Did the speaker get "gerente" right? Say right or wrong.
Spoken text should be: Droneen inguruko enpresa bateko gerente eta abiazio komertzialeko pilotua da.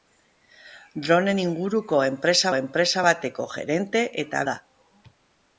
right